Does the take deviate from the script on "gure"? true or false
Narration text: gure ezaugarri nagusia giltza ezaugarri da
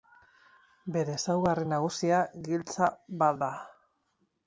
true